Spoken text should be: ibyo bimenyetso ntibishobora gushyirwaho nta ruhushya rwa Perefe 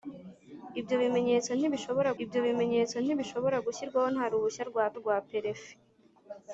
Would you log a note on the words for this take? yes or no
yes